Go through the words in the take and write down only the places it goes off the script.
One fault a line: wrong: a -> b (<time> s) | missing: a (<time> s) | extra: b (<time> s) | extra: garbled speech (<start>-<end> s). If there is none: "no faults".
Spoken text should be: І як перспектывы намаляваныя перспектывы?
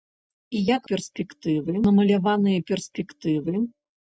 no faults